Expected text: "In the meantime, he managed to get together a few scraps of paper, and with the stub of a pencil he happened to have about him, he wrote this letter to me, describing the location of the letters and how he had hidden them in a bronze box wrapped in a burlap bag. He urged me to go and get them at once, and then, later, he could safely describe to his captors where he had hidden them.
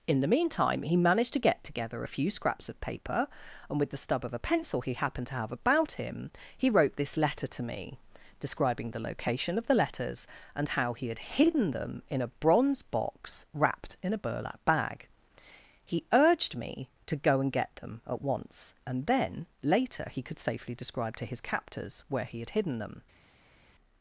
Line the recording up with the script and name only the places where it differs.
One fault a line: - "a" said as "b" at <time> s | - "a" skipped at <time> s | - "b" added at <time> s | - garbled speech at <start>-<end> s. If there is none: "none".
none